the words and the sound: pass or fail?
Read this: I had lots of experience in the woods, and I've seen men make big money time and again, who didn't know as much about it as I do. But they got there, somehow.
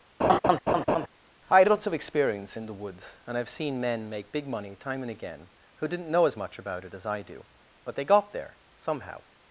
fail